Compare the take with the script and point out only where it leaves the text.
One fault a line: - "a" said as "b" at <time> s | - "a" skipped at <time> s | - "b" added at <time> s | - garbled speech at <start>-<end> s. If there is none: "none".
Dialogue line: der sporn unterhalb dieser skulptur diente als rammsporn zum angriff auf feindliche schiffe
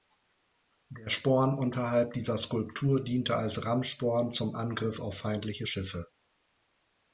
none